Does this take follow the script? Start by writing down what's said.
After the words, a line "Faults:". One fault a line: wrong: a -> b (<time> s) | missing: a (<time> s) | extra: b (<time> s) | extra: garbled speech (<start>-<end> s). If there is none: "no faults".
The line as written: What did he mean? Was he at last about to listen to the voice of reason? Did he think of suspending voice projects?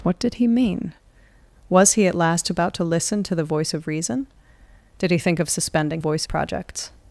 What did he mean? Was he at last about to listen to the voice of reason? Did he think of suspending voice projects?
Faults:
no faults